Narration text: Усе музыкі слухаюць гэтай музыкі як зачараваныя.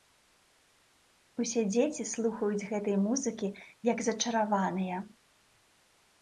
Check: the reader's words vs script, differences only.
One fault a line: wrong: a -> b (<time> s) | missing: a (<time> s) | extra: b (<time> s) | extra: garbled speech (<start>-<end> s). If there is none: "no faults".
wrong: музыкі -> дзеці (1.7 s)